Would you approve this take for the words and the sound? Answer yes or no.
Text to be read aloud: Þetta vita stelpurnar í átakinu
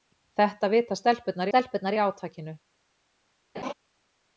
no